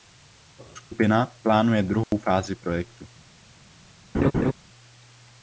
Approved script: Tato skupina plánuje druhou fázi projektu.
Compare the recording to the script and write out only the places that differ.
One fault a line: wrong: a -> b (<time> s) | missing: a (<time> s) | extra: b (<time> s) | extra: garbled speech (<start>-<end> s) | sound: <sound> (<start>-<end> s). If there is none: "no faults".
sound: dropout (2.0-2.1 s)
sound: laugh (4.1-4.5 s)